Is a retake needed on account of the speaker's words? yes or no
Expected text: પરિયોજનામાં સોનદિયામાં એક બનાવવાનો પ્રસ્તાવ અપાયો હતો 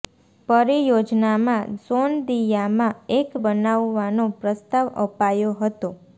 no